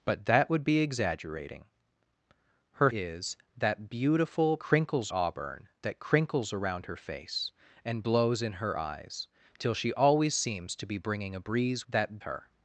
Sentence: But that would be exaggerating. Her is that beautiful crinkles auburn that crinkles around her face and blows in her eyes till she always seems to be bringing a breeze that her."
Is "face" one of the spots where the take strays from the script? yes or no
no